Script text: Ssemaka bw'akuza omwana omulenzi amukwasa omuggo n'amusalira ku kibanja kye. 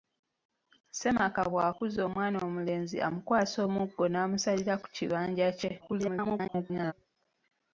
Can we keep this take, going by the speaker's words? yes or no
no